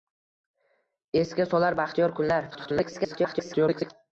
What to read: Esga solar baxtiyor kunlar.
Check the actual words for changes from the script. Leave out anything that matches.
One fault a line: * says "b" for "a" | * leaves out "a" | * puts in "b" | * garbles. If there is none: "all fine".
* garbles